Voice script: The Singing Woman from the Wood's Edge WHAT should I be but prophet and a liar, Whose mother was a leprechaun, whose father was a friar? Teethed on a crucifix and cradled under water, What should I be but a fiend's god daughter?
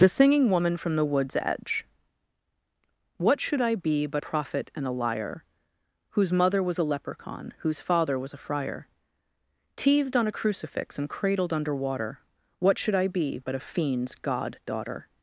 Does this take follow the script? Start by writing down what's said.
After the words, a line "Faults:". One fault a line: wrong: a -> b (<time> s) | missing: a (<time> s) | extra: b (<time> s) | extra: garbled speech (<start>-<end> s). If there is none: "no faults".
The Singing Woman from the Wood's Edge WHAT should I be but prophet and a liar, Whose mother was a leprechaun, whose father was a friar? Teethed on a crucifix and cradled under water, What should I be but a fiend's god daughter?
Faults:
no faults